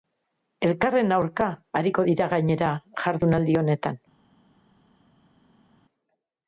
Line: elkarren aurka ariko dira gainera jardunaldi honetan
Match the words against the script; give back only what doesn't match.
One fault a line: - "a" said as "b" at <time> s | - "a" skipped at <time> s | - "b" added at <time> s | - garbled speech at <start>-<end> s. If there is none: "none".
none